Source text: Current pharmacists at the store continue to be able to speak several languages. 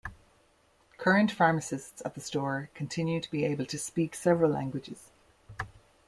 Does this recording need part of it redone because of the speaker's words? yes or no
no